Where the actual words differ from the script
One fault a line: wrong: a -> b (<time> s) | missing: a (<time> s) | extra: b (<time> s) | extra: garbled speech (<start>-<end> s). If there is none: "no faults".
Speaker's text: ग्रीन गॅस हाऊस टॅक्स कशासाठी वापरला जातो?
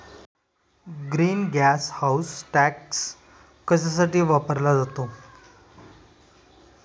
no faults